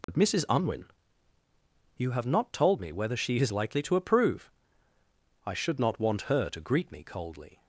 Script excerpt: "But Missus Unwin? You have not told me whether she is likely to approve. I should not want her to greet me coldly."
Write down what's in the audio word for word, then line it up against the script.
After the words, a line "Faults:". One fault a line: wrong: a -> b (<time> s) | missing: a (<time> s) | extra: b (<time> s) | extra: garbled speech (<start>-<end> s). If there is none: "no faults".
"But Missus Unwin? You have not told me whether she is likely to approve. I should not want her to greet me coldly."
Faults:
no faults